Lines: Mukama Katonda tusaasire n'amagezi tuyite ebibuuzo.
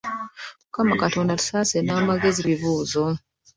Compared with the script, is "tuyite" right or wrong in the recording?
wrong